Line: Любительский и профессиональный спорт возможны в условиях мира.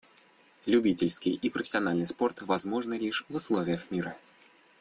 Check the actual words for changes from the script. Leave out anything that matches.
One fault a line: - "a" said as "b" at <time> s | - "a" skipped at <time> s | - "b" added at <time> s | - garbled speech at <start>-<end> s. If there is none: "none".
- "лишь" added at 2.9 s